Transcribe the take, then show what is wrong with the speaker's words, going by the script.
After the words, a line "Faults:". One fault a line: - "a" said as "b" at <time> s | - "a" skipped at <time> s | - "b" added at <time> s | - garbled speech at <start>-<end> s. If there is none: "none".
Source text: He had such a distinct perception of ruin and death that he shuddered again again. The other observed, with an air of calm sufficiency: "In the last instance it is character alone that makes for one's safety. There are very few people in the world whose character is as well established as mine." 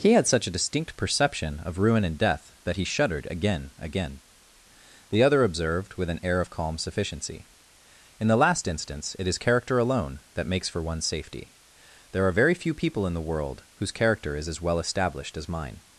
He had such a distinct perception of ruin and death that he shuddered again again. The other observed, with an air of calm sufficiency: "In the last instance it is character alone that makes for one's safety. There are very few people in the world whose character is as well established as mine."
Faults:
none